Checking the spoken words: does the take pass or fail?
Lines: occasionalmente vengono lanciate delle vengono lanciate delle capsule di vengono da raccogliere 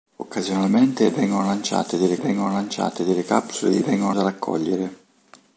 pass